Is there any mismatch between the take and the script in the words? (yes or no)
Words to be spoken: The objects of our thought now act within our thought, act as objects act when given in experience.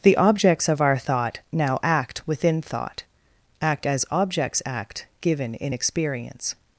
yes